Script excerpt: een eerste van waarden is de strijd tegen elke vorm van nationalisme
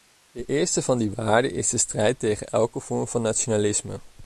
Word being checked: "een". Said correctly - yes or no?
no